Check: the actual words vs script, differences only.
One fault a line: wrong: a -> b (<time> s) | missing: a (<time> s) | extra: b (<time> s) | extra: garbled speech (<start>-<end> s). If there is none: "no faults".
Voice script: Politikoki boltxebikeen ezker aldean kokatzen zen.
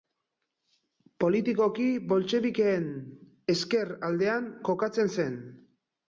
no faults